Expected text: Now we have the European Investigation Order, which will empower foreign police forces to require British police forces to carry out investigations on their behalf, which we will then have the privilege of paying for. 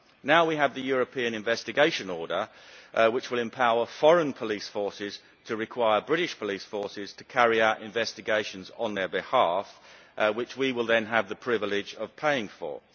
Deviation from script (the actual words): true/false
false